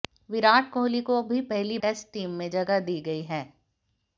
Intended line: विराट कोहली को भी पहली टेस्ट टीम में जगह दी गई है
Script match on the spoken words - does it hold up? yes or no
yes